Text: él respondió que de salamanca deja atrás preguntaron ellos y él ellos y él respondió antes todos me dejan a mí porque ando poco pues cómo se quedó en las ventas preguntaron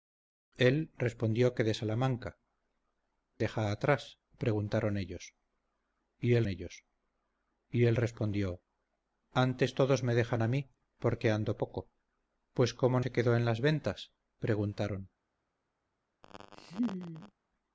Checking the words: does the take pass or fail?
pass